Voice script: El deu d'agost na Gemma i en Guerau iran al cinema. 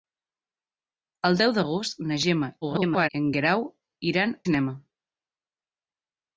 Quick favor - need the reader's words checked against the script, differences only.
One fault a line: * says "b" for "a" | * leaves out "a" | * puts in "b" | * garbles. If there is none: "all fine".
* garbles
* leaves out "al"